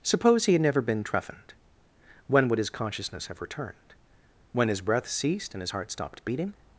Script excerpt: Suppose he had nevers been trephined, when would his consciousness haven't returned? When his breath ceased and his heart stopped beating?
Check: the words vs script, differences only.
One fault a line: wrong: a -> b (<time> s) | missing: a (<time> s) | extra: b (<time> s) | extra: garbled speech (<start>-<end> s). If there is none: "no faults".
wrong: nevers -> never (0.6 s)
wrong: haven't -> have (3.3 s)